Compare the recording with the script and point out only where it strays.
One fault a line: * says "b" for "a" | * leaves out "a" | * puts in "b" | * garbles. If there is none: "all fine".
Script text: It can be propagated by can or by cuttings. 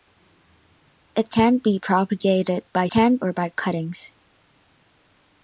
all fine